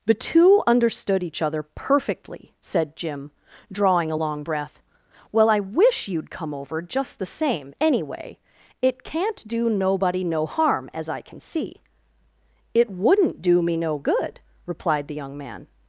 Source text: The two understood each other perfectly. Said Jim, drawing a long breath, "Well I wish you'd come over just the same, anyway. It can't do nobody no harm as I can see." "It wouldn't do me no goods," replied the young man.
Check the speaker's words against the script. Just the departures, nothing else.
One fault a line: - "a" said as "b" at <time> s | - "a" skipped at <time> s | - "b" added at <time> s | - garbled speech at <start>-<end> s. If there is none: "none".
- "goods" said as "good" at 14.0 s